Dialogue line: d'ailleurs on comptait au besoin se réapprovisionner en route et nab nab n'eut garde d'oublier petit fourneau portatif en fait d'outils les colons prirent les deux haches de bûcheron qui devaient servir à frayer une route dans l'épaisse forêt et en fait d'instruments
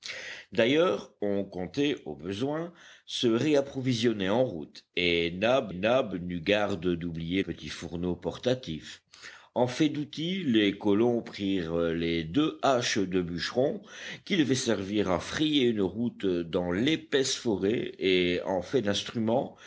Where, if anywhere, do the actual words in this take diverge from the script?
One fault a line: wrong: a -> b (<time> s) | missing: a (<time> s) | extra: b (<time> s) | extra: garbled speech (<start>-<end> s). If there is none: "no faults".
no faults